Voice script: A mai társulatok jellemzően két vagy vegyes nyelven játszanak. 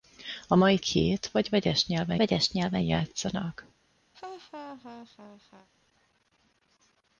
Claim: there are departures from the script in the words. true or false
true